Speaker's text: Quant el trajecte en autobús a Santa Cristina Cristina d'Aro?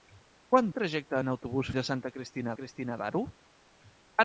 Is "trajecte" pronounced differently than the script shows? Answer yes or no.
no